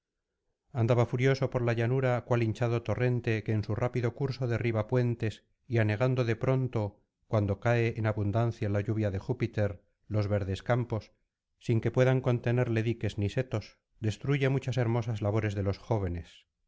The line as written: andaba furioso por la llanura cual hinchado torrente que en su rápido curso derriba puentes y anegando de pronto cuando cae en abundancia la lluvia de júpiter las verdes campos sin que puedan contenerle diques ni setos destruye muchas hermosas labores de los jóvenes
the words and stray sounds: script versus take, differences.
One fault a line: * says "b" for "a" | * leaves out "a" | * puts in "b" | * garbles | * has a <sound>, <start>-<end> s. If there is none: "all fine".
* says "los" for "las"